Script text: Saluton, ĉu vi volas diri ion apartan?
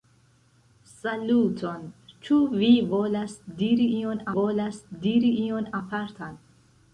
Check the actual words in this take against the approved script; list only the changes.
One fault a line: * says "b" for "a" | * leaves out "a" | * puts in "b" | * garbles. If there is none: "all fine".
* puts in "volas diri ion"